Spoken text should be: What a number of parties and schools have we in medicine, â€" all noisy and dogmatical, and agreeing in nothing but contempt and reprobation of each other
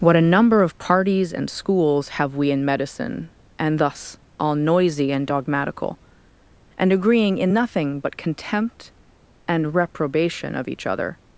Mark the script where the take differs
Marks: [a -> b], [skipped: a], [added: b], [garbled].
What a number of parties and schools have we in medicine, [â€" -> and thus] all noisy and dogmatical, and agreeing in nothing but contempt and reprobation of each other